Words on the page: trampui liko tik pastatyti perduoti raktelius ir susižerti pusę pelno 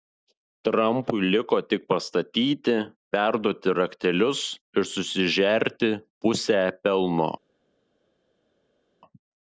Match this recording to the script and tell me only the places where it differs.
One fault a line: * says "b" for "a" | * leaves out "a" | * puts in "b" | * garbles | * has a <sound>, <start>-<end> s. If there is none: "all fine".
all fine